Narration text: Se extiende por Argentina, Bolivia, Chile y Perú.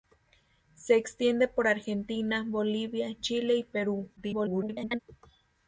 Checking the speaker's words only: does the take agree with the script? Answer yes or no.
no